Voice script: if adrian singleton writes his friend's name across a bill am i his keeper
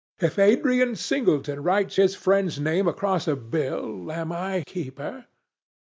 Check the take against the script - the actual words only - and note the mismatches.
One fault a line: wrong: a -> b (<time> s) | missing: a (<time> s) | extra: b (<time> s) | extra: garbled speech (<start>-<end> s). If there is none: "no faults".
missing: his (4.6 s)